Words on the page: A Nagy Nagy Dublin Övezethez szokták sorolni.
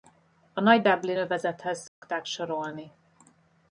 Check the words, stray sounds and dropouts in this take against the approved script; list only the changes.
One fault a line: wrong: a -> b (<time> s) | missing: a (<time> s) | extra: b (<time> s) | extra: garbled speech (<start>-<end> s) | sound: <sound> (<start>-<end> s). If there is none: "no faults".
missing: Nagy (0.8 s)
sound: dropout (1.9-2.0 s)